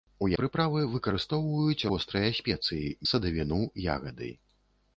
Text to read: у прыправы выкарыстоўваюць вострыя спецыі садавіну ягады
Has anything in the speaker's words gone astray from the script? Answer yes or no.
no